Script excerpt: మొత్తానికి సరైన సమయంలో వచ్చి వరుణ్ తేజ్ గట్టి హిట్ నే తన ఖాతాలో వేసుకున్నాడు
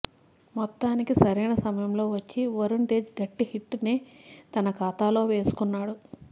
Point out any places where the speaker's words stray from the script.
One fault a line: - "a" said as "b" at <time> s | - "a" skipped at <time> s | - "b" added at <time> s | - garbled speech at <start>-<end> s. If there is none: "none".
none